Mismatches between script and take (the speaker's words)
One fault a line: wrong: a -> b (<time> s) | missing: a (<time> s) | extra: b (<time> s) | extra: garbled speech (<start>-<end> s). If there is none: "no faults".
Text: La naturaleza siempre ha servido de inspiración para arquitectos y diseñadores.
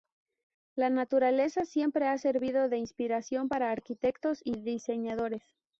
no faults